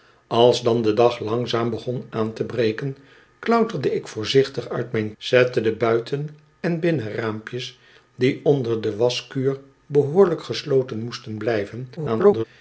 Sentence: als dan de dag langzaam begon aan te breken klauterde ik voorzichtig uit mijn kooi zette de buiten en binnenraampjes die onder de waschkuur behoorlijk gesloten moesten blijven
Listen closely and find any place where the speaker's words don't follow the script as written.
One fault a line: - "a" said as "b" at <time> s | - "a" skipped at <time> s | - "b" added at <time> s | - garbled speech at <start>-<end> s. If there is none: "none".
- "kooi" skipped at 5.1 s
- garbled speech at 12.0-12.4 s